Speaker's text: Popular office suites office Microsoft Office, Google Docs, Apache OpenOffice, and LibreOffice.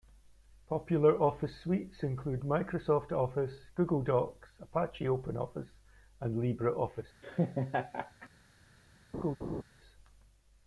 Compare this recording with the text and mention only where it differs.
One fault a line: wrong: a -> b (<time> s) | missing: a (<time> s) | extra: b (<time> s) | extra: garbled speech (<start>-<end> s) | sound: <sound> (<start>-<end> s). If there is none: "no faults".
wrong: office -> include (2.0 s)
sound: laugh (7.2-8.3 s)
sound: laugh (9.1-9.6 s)